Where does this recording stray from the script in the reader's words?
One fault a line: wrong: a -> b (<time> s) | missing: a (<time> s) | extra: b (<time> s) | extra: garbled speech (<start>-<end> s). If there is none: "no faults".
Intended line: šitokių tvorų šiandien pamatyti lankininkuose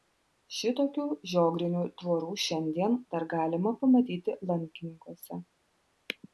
extra: žiogrinių (1.3 s)
extra: dar galima (3.2 s)